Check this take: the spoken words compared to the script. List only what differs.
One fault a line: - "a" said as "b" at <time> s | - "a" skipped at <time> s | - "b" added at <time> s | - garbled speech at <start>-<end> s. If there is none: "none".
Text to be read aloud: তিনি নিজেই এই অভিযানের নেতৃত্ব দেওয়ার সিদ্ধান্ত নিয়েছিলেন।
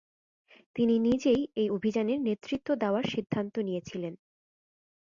none